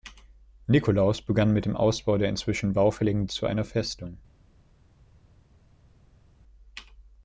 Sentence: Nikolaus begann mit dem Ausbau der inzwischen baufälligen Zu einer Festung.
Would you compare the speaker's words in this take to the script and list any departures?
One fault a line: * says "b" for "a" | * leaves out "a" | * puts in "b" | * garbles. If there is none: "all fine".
all fine